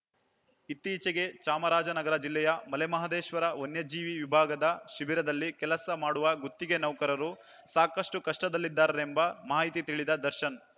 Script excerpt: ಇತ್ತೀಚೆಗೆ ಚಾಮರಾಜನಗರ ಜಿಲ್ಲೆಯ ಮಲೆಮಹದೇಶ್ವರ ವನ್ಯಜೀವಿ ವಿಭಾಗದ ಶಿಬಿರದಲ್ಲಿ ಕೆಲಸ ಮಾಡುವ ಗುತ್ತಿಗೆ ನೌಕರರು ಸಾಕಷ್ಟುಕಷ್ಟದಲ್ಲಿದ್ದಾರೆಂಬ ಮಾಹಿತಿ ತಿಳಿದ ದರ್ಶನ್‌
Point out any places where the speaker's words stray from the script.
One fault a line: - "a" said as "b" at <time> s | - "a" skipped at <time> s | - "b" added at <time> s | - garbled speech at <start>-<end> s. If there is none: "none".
none